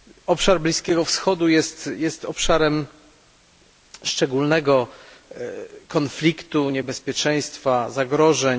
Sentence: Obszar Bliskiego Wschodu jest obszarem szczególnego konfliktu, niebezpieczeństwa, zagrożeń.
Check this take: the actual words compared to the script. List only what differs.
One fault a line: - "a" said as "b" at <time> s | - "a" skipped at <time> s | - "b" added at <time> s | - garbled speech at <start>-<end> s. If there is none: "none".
none